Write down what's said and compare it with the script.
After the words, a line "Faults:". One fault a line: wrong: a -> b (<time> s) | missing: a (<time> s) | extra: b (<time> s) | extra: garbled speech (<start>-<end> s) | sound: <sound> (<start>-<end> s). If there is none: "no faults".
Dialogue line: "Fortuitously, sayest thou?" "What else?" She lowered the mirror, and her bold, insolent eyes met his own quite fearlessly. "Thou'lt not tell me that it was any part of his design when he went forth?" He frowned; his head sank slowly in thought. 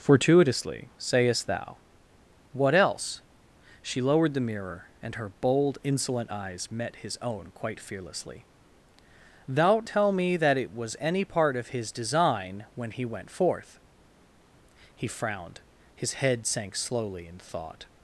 "Fortuitously, sayest thou?" "What else?" She lowered the mirror, and her bold, insolent eyes met his own quite fearlessly. "Thou'lt tell me that it was any part of his design when he went forth?" He frowned; his head sank slowly in thought.
Faults:
missing: not (9.9 s)